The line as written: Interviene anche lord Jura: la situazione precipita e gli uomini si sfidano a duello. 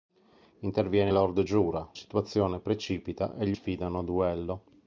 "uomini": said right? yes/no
no